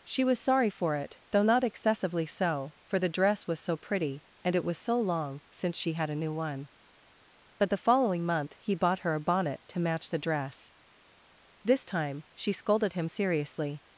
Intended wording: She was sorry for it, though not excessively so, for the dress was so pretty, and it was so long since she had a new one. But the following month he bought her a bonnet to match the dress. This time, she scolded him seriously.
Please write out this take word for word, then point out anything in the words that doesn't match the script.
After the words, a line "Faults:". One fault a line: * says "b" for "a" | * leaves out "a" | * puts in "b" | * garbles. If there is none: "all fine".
She was sorry for it, though not excessively so, for the dress was so pretty, and it was so long since she had a new one. But the following month he bought her a bonnet to match the dress. This time, she scolded him seriously.
Faults:
all fine